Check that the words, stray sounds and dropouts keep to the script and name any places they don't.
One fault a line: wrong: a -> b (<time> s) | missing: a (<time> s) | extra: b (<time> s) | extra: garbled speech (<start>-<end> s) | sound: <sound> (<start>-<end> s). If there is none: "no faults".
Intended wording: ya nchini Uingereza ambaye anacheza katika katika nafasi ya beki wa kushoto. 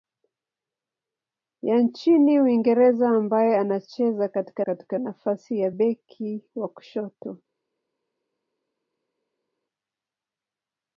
no faults